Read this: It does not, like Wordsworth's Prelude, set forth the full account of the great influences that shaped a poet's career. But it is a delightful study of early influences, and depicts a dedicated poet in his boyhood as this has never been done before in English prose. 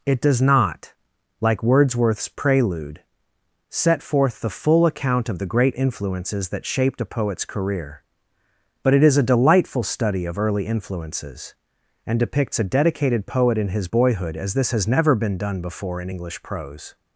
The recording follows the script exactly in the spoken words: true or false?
true